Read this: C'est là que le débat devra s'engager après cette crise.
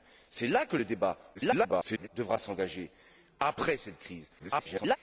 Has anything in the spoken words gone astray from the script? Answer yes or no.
yes